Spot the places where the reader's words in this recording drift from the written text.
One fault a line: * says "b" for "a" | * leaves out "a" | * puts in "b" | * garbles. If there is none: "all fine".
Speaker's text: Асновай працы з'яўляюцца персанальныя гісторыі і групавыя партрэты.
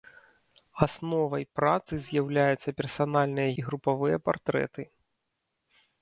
* leaves out "гісторыі"